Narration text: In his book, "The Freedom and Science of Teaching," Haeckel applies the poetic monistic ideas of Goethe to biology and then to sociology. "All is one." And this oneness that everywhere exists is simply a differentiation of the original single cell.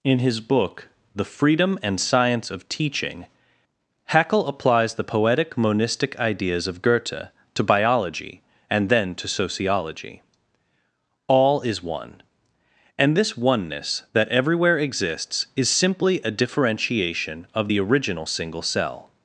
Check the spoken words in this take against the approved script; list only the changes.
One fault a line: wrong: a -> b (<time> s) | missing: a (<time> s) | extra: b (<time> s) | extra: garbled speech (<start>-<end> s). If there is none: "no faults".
no faults